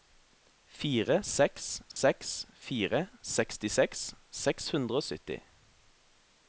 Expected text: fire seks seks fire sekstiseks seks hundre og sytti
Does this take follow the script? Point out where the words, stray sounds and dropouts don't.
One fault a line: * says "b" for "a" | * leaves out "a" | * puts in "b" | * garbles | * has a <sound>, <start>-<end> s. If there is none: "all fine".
* has a dropout, 1.9-2.0 s